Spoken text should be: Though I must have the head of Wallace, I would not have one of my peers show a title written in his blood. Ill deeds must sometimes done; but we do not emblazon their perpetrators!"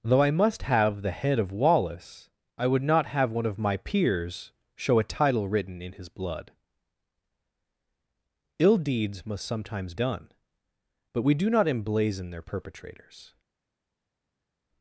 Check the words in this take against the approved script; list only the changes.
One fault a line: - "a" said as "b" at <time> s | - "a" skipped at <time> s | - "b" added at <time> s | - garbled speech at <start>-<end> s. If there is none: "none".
none